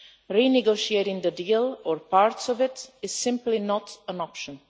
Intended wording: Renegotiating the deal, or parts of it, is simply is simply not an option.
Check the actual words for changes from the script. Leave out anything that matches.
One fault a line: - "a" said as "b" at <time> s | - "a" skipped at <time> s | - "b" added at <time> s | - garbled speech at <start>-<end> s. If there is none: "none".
- "is simply" skipped at 3.6 s